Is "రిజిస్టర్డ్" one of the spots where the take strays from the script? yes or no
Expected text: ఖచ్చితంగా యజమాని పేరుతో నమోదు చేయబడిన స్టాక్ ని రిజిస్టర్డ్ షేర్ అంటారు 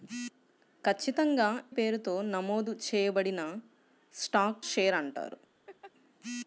yes